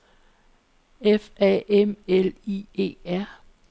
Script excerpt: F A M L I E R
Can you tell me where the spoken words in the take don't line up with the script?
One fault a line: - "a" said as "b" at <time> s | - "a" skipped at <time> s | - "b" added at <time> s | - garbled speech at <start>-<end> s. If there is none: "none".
none